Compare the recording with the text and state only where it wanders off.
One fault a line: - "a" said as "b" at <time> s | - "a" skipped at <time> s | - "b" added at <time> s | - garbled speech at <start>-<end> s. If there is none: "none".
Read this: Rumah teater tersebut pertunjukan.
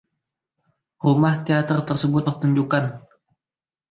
none